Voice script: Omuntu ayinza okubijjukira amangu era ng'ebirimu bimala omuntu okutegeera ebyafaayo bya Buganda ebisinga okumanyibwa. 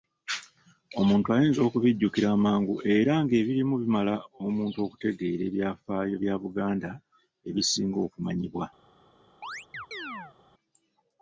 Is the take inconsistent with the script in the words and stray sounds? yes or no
yes